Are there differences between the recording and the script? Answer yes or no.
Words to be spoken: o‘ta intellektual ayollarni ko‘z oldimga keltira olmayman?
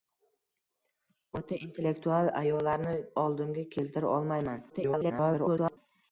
yes